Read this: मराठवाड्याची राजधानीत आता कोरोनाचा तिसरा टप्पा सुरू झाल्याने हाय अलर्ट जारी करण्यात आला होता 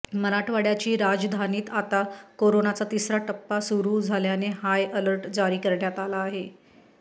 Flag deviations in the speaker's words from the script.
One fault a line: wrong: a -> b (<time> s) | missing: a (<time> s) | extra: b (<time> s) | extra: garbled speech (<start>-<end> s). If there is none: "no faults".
wrong: होता -> आहे (6.2 s)